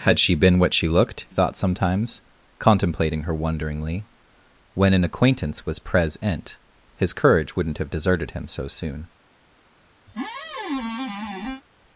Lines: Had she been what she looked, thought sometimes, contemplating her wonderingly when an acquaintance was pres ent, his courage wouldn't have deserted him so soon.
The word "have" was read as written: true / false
true